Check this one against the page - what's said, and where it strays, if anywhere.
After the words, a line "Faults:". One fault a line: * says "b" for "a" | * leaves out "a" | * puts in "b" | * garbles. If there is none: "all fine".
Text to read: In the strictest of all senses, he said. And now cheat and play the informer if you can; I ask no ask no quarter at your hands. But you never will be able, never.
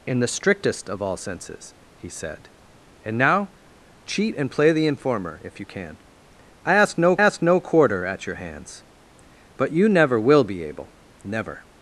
In the strictest of all senses, he said. And now cheat and play the informer if you can; I ask no ask no quarter at your hands. But you never will be able, never.
Faults:
all fine